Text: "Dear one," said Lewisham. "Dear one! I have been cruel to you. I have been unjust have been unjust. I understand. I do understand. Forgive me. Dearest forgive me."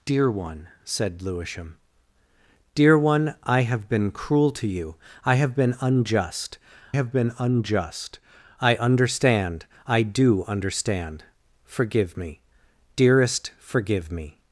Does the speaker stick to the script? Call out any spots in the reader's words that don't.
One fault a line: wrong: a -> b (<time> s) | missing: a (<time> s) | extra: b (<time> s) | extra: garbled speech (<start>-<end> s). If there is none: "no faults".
no faults